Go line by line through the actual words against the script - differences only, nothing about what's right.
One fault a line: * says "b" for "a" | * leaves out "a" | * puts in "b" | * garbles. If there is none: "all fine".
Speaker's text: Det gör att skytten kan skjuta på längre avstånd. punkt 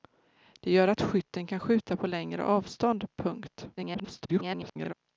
* garbles